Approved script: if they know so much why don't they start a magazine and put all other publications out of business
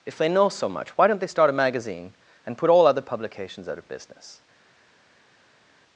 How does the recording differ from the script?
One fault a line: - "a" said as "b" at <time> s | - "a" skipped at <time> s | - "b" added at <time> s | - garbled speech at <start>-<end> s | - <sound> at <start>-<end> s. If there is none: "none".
none